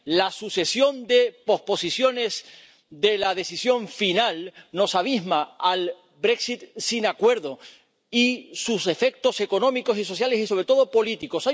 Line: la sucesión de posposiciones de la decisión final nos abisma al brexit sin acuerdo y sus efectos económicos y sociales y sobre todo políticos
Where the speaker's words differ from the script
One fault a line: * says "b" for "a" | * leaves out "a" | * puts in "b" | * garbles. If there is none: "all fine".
all fine